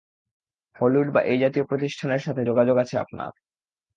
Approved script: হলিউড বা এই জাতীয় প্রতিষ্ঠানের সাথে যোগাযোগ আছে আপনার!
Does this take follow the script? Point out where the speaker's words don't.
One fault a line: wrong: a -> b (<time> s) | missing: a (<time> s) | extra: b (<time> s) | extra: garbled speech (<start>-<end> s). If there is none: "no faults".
no faults